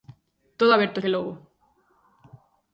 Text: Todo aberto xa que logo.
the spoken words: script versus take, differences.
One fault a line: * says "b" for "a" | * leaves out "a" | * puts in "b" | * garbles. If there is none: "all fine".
* leaves out "xa"